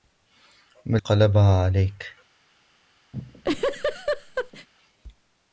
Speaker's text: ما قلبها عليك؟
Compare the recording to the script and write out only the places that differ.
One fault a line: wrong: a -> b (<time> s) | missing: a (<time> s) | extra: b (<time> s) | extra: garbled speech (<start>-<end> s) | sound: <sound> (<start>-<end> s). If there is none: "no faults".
sound: laugh (3.1-4.7 s)